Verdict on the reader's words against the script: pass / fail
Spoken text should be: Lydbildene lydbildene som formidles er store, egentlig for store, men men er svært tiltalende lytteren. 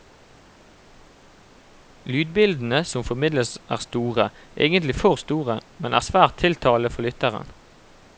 fail